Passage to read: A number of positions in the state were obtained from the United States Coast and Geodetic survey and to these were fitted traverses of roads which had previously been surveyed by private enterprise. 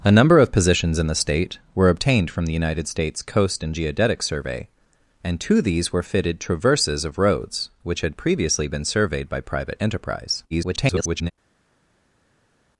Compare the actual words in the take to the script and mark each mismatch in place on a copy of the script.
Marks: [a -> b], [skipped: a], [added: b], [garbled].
A number of positions in the state were obtained from the United States Coast and Geodetic survey and to these were fitted traverses of roads which had previously been surveyed by private enterprise. [garbled]